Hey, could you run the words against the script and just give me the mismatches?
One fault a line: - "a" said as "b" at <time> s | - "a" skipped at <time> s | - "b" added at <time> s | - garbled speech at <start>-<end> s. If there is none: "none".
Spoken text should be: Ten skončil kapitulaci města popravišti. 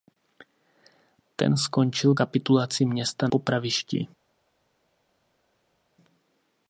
none